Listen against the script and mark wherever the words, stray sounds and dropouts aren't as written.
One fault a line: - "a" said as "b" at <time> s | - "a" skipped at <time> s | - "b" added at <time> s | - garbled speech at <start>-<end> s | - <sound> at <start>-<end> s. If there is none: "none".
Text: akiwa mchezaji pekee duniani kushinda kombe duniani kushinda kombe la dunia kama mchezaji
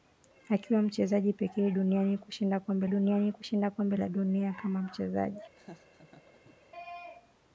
- laugh at 5.6-6.7 s